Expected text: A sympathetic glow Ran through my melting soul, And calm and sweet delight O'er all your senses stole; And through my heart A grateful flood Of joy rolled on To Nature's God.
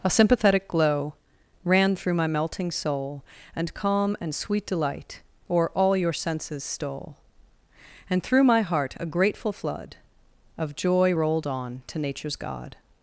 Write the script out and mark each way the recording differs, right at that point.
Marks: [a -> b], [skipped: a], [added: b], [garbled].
A sympathetic glow Ran through my melting soul, And calm and sweet delight O'er all your senses stole; And through my heart A grateful flood Of joy rolled on To Nature's God.